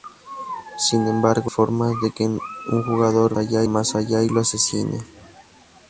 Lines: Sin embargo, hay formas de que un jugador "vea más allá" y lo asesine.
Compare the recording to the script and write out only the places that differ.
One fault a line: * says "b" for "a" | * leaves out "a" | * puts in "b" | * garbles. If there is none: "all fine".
* leaves out "hay"
* says "allá" for "vea"